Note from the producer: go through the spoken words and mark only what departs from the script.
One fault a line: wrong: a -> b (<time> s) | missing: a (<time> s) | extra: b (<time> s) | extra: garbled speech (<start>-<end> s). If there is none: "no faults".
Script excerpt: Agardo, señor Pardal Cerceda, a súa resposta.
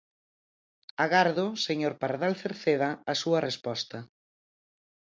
no faults